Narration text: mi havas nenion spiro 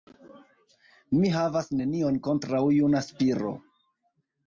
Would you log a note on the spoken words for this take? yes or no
yes